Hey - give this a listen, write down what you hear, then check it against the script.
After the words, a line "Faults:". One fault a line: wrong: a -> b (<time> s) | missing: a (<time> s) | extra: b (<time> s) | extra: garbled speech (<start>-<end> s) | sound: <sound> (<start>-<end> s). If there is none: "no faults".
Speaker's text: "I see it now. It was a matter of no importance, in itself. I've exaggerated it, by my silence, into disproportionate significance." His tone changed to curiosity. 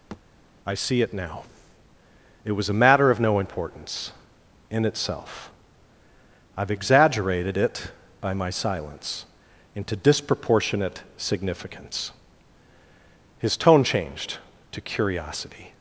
"I see it now. It was a matter of no importance, in itself. I've exaggerated it, by my silence, into disproportionate significance." His tone changed to curiosity.
Faults:
sound: thud (0.1-0.2 s)